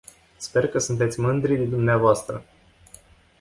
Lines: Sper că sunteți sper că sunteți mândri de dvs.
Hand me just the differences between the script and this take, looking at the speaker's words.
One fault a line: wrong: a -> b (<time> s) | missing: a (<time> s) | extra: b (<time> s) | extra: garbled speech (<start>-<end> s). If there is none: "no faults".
missing: sper că sunteți (1.2 s)